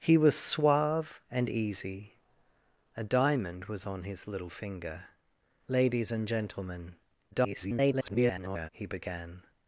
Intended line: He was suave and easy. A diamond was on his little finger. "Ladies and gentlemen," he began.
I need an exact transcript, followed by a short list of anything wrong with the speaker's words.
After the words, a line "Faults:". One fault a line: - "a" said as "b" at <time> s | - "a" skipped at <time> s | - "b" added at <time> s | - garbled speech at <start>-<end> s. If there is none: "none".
He was suave and easy. A diamond was on his little finger. "Ladies and gentlemen," [garbled] he began.
Faults:
- garbled speech at 7.3-8.7 s